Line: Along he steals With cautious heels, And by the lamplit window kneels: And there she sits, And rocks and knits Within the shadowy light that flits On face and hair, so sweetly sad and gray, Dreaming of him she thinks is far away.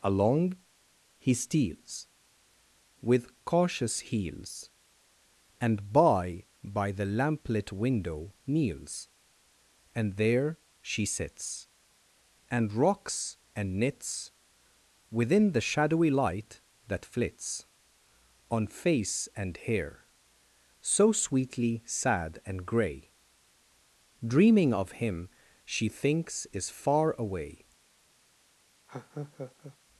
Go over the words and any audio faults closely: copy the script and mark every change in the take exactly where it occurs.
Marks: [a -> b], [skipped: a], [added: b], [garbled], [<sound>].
Along he steals With cautious heels, And by [added: by] the lamplit window kneels: And there she sits, And rocks and knits Within the shadowy light that flits On face and hair, so sweetly sad and gray, Dreaming of him she thinks is far away. [laugh]